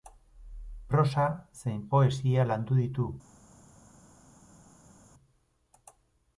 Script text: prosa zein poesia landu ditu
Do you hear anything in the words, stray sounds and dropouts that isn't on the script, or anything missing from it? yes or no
no